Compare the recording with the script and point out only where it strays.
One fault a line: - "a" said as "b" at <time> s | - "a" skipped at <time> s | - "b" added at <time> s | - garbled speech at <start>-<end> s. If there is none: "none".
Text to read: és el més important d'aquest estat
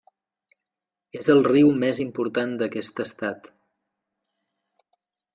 - "riu" added at 1.5 s